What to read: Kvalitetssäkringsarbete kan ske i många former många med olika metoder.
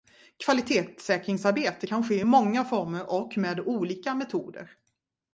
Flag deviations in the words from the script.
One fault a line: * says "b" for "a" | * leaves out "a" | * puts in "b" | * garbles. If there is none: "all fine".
* says "och" for "många"